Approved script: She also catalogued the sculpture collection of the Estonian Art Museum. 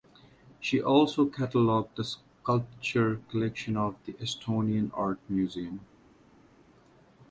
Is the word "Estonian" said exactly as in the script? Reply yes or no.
yes